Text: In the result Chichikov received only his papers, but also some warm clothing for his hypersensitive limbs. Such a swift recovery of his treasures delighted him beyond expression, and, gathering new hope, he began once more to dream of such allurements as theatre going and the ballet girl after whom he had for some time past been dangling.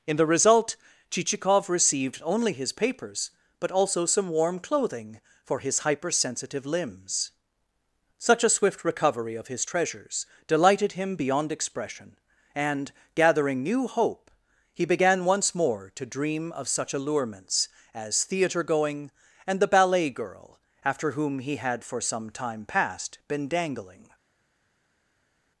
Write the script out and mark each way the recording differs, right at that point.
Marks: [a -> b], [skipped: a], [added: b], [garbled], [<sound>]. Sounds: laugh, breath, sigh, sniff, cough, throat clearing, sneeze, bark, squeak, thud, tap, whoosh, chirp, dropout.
In the result Chichikov received only his papers, but also some warm clothing for his hypersensitive limbs. Such a swift recovery of his treasures delighted him beyond expression, and, gathering new hope, he began once more to dream of such allurements as theatre going and the ballet girl after whom he had for some time past been dangling.